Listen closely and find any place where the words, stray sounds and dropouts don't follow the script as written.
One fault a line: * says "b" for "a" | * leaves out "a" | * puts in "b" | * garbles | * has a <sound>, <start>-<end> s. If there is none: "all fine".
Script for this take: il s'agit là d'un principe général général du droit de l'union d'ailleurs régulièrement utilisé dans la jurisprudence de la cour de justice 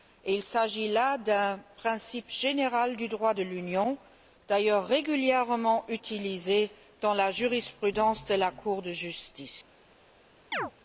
* leaves out "général"
* has a chirp, 10.5-10.7 s